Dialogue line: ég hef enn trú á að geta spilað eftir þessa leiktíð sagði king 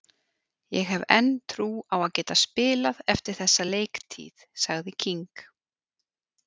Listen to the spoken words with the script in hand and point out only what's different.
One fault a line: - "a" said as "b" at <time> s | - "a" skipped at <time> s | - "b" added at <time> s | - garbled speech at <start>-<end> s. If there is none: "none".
none